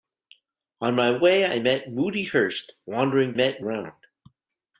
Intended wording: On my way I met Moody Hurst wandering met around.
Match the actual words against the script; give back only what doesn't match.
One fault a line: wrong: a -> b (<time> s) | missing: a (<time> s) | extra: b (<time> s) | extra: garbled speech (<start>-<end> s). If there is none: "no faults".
no faults